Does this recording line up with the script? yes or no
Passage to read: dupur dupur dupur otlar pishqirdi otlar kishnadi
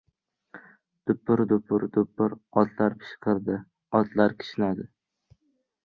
yes